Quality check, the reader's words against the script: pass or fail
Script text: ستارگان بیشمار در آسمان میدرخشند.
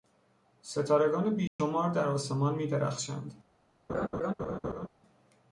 pass